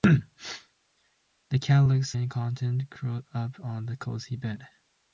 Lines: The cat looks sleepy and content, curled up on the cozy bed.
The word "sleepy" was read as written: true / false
false